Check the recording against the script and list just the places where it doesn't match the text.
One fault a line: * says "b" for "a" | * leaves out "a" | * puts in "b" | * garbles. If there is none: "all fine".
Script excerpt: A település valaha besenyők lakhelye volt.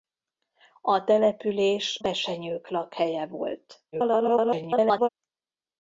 * leaves out "valaha"
* garbles